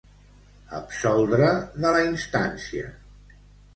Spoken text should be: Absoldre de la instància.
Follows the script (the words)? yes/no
yes